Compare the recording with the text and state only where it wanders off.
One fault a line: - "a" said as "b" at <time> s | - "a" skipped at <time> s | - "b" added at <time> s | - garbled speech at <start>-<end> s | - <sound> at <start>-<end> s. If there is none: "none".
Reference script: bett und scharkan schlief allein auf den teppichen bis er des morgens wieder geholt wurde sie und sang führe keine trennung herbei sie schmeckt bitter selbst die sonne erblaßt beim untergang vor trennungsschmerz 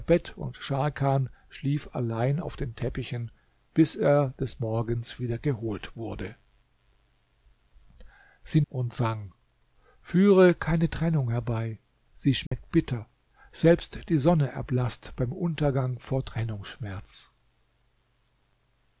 - dropout at 12.5-12.5 s